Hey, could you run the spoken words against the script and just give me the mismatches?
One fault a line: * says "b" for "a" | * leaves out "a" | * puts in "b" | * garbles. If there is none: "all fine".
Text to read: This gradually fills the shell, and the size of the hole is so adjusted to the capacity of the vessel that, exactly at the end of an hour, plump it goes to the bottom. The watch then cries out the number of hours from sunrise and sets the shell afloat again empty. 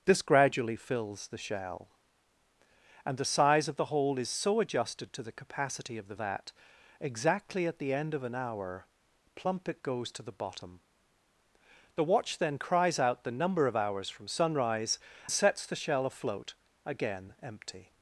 * leaves out "vessel"
* leaves out "and"